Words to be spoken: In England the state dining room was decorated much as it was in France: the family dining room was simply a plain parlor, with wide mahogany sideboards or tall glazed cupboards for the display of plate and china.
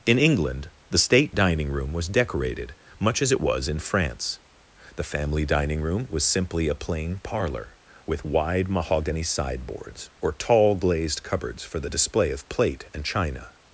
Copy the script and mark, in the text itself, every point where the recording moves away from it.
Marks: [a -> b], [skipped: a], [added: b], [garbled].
In England the state dining room was decorated much as it was in France: the family dining room was simply a plain parlor, with wide mahogany sideboards or tall glazed cupboards for the display of plate and china.